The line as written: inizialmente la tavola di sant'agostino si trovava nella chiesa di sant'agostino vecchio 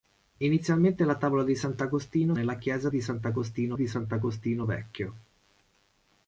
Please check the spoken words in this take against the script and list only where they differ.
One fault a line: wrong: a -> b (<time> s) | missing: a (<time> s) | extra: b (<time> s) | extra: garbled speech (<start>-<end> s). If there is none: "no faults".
wrong: si trovava nella chiesa -> nella chiesa di sant'agostino (2.3 s)